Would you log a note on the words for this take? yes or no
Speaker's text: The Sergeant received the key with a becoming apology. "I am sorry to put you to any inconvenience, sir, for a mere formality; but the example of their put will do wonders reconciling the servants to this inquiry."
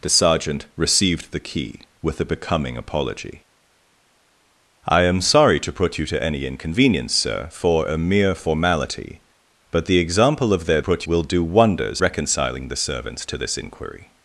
no